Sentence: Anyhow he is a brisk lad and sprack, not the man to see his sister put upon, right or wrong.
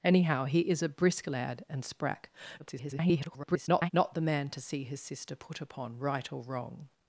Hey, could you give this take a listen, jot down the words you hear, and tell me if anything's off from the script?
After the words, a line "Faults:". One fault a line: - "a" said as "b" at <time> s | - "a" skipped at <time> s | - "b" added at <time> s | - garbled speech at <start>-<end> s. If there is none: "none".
Anyhow he is a brisk lad and sprack, [garbled] not the man to see his sister put upon, right or wrong.
Faults:
- garbled speech at 2.6-3.9 s